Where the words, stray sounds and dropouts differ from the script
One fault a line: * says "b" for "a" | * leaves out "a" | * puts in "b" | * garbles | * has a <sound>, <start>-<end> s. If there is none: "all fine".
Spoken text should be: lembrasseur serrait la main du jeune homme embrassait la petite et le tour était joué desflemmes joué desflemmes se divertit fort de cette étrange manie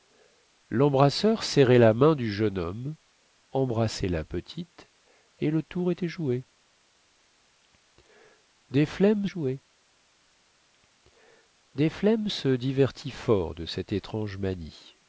all fine